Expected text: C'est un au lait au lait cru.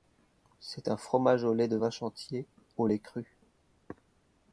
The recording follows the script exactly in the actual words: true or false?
false